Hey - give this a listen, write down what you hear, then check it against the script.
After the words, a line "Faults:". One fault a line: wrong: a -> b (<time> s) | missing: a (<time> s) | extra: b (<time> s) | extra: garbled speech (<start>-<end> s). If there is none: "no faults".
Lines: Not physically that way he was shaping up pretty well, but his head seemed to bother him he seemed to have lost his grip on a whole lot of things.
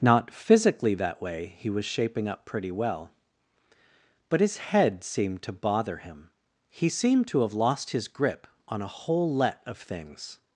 Not physically that way he was shaping up pretty well, but his head seemed to bother him he seemed to have lost his grip on a whole let of things.
Faults:
wrong: lot -> let (9.3 s)